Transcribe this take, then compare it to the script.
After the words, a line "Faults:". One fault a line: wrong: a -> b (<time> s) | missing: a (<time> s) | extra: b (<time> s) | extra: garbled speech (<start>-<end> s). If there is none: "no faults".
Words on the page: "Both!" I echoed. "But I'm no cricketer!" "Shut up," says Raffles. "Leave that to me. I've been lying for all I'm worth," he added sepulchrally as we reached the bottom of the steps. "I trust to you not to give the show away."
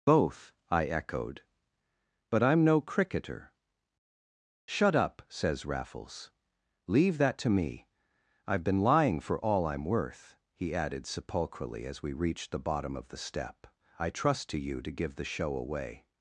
"Both!" I echoed. "But I'm no cricketer!" "Shut up," says Raffles. "Leave that to me. I've been lying for all I'm worth," he added sepulchrally as we reached the bottom of the step. "I trust to you to give the show away."
Faults:
wrong: steps -> step (13.2 s)
missing: not (14.8 s)